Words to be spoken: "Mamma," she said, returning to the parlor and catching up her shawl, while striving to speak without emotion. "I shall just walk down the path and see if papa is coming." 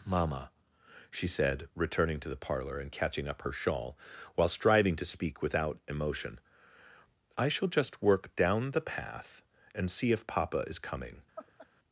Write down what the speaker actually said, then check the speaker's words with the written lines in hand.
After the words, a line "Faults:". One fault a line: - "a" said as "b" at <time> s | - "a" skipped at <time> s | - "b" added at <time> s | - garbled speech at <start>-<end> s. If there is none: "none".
"Mamma," she said, returning to the parlor and catching up her shawl, while striving to speak without emotion. "I shall just work down the path and see if papa is coming."
Faults:
- "walk" said as "work" at 8.0 s